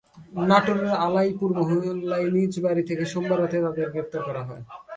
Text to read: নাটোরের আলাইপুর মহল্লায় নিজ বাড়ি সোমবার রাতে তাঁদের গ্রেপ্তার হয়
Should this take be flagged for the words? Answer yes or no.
yes